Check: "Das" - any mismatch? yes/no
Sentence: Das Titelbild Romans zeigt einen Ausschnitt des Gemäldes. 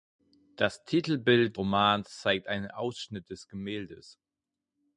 no